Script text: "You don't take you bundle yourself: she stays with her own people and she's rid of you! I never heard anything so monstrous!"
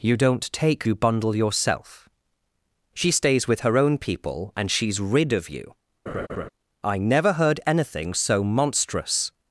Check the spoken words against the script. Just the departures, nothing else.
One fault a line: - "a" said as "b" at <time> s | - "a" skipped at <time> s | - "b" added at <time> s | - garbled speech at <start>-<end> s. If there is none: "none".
none